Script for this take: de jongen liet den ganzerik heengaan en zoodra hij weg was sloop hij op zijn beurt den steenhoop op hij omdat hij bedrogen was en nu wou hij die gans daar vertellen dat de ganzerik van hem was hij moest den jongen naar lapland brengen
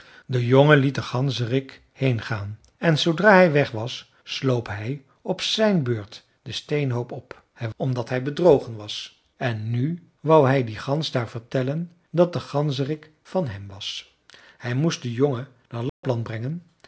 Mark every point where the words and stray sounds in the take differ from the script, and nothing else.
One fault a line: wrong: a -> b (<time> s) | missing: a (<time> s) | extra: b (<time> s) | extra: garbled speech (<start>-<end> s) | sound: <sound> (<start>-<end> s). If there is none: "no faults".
sound: dropout (15.9-16.0 s)